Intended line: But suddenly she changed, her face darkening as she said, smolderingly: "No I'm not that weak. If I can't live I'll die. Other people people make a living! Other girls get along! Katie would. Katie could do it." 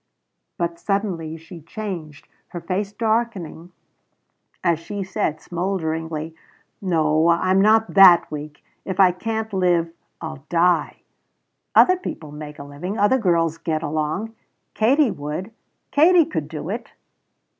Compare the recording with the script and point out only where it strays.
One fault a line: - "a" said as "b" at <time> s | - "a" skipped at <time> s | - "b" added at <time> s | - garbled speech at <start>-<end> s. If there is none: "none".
- "people" skipped at 12.3 s